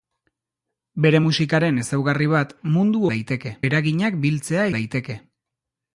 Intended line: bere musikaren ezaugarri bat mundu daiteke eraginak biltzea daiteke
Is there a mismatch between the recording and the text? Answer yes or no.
no